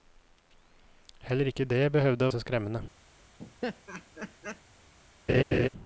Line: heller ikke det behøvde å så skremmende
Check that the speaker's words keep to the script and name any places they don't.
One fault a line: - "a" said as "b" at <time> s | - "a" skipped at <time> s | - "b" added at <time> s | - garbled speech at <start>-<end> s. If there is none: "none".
none